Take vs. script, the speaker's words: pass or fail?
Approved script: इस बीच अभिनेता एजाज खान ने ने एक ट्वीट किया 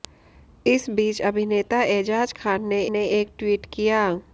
pass